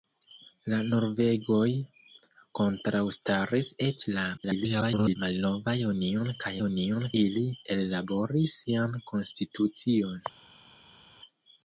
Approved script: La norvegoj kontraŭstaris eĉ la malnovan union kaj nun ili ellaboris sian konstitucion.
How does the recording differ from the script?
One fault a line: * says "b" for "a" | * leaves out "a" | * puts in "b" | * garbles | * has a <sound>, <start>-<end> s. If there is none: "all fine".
* garbles
* says "union" for "nun"